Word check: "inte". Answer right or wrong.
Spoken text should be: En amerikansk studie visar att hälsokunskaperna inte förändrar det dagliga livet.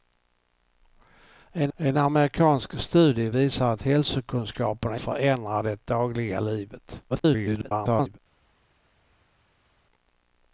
wrong